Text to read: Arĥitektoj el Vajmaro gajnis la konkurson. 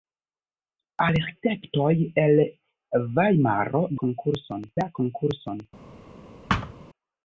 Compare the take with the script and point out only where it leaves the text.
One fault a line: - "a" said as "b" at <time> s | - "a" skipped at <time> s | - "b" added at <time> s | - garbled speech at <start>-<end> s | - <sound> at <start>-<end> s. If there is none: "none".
- "gajnis" said as "konkurson" at 4.1 s
- thud at 6.5-6.7 s